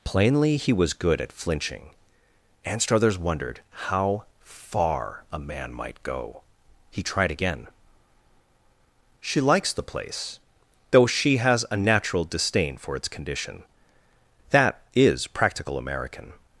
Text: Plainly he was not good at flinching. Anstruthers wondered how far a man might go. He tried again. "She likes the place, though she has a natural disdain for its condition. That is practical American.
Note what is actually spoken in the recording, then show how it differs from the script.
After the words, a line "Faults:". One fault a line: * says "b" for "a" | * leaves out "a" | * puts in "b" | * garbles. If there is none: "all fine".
Plainly he was good at flinching. Anstruthers wondered how far a man might go. He tried again. "She likes the place, though she has a natural disdain for its condition. That is practical American.
Faults:
* leaves out "not"